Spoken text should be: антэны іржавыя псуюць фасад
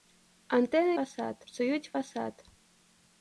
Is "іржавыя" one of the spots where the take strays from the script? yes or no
yes